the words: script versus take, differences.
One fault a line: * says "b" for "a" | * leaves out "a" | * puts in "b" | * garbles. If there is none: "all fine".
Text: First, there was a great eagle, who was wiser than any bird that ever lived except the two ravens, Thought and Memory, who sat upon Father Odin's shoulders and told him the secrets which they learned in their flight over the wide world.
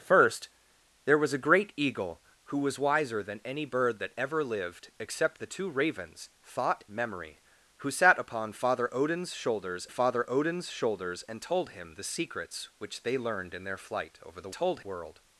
* leaves out "and"
* puts in "Father Odin's shoulders"
* says "told" for "wide"